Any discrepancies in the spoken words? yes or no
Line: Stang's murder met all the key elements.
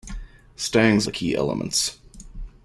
yes